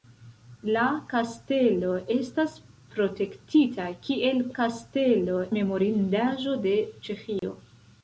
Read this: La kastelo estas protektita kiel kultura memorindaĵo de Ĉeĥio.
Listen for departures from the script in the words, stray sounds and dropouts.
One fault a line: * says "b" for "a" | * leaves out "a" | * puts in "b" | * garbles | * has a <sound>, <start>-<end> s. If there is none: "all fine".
* says "kastelo" for "kultura"
* has a dropout, 7.4-7.4 s